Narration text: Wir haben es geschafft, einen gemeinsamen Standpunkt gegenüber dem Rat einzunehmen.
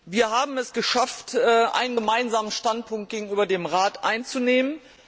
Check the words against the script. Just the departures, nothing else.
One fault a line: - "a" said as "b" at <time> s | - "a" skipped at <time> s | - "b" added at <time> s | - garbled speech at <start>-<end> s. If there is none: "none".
none